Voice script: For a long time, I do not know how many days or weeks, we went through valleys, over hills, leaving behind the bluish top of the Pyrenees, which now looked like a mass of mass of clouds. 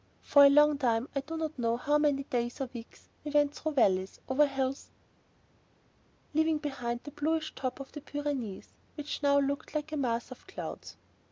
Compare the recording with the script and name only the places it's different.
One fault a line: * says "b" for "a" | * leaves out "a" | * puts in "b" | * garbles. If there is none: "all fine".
* leaves out "mass of"